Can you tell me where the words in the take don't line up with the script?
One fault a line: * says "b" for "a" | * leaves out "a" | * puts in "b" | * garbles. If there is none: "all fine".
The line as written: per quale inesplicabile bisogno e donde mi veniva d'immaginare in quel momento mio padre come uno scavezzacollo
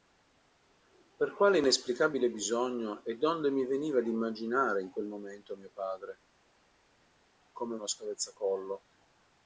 all fine